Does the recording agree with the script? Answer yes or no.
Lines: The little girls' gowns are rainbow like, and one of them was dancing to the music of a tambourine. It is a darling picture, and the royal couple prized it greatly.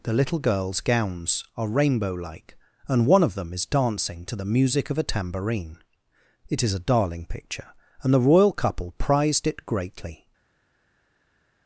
no